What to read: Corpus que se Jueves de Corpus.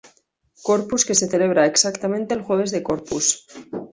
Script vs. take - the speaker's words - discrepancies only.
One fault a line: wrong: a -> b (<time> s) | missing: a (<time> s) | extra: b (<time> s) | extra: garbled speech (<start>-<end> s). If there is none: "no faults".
extra: celebra exactamente el (1.3 s)